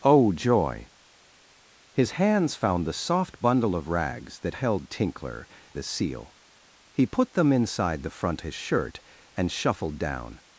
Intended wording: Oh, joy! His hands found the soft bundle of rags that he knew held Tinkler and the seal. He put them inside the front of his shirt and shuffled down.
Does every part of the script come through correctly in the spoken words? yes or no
no